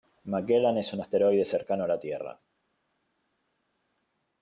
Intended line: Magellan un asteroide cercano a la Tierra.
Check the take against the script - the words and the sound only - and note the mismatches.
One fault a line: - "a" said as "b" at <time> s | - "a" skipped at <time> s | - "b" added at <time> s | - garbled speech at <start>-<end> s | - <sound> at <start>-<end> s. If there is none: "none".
- "es" added at 0.8 s